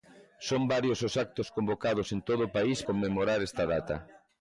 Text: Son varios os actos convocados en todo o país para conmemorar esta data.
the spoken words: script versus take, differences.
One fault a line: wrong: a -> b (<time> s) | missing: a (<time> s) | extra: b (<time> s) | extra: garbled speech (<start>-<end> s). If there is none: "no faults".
missing: para (2.8 s)